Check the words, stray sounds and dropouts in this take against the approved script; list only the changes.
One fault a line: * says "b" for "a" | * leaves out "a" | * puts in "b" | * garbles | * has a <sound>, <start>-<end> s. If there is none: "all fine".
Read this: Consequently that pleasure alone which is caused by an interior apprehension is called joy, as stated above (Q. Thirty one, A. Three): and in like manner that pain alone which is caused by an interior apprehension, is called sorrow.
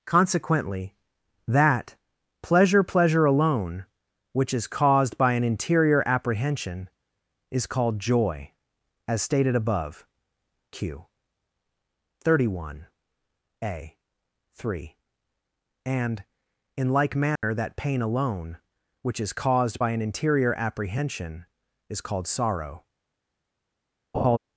* puts in "pleasure"
* has a dropout, 17.4-17.4 s
* has a laugh, 24.1-24.4 s